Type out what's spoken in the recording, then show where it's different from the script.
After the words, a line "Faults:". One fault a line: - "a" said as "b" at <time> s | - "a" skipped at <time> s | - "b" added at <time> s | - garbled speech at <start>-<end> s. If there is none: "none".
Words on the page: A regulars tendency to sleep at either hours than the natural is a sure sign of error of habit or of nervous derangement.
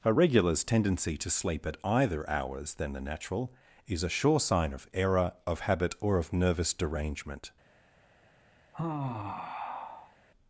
A regulars tendency to sleep at either hours than the natural is a sure sign of error of habit or of nervous derangement.
Faults:
none